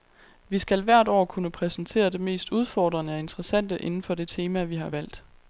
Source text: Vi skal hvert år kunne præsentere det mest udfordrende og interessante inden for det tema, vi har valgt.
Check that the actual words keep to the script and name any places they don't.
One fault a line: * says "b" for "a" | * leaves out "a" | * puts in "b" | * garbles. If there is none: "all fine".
all fine